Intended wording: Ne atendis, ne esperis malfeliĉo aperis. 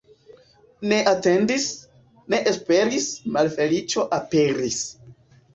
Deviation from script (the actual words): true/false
false